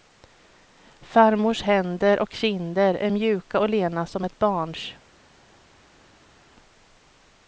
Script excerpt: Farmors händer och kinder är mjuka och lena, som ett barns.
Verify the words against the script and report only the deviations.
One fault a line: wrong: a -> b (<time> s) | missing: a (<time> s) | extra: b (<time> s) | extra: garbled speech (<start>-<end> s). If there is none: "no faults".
no faults